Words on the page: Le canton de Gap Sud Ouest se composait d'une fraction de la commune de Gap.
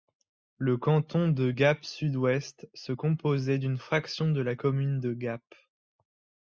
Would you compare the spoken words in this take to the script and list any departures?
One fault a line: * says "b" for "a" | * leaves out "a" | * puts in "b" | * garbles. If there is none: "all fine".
all fine